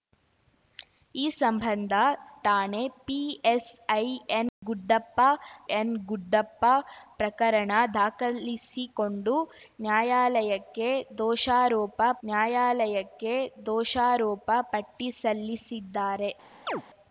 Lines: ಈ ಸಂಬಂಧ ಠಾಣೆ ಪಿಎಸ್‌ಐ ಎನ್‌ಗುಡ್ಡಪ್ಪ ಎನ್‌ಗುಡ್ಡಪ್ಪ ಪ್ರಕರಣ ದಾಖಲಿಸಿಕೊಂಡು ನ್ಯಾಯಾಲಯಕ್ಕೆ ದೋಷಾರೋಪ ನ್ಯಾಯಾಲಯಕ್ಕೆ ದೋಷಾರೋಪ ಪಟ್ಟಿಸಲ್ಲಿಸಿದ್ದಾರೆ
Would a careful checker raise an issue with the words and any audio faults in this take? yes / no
yes